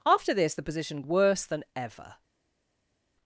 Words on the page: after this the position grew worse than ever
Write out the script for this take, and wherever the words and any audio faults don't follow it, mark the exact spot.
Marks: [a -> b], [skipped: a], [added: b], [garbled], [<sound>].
after this the position [skipped: grew] worse than ever